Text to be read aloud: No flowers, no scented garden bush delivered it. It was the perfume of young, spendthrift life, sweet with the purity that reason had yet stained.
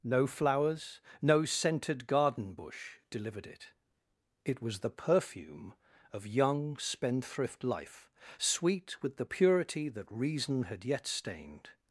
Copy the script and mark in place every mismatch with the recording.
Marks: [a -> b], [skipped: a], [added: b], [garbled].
No flowers, no scented garden bush delivered it. It was the perfume of young, spendthrift life, sweet with the purity that reason had yet stained.